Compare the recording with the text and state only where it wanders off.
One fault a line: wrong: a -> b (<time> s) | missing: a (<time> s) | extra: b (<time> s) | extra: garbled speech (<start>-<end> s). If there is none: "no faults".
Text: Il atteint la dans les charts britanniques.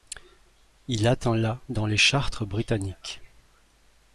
no faults